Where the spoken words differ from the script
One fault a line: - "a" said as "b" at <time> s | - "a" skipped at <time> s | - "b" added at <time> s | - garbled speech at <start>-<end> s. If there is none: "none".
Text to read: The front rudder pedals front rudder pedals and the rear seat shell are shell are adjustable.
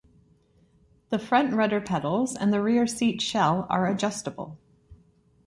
- "front rudder pedals" skipped at 2.4 s
- "shell are" skipped at 3.9 s